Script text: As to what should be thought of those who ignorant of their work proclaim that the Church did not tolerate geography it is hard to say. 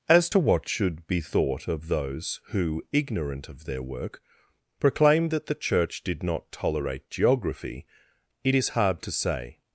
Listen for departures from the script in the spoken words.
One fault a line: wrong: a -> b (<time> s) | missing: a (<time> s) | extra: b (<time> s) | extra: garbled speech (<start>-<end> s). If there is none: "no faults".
no faults